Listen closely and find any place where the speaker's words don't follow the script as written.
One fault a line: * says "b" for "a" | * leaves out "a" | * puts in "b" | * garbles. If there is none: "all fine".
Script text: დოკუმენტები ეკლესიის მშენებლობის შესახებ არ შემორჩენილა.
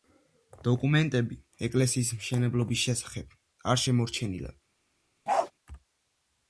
all fine